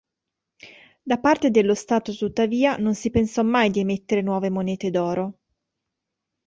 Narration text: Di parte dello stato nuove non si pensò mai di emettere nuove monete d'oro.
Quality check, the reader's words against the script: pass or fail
fail